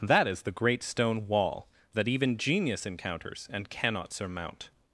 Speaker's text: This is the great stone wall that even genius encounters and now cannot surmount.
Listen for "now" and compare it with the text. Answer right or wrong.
wrong